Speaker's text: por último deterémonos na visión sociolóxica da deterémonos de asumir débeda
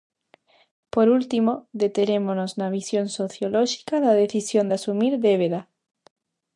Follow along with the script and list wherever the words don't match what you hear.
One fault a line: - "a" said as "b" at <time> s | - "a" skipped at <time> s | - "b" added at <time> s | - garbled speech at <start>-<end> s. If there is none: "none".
- "deterémonos" said as "decisión" at 4.2 s